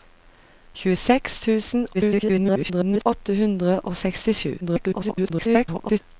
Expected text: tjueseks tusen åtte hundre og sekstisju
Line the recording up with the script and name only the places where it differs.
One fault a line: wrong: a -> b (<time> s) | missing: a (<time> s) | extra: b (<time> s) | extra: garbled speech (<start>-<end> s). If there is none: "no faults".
extra: garbled speech (1.9-3.1 s)
extra: garbled speech (4.6-6.0 s)